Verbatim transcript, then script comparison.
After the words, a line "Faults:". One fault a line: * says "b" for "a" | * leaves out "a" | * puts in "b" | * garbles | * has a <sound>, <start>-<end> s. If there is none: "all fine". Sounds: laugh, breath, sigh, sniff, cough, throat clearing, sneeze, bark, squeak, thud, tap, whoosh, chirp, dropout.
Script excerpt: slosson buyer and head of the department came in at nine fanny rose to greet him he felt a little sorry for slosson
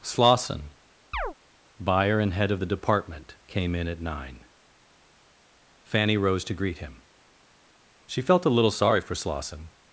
slosson buyer and head of the department came in at nine fanny rose to greet him she felt a little sorry for slosson
Faults:
* has a chirp, 1.1-1.3 s
* says "she" for "he"